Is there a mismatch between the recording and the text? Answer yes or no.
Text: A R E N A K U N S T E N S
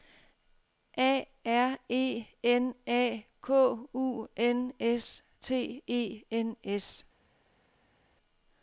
no